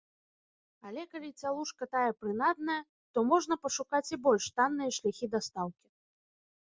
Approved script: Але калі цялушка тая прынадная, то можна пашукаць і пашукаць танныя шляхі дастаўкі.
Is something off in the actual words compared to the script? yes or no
yes